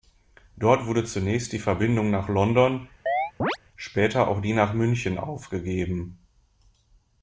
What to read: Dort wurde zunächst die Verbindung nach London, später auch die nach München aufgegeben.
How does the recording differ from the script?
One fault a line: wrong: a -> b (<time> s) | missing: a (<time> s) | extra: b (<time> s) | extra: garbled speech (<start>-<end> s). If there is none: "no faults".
no faults